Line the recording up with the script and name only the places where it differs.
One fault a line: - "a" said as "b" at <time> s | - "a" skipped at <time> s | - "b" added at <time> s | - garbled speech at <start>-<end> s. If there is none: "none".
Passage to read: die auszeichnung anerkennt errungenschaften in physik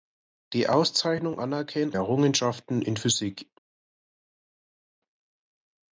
none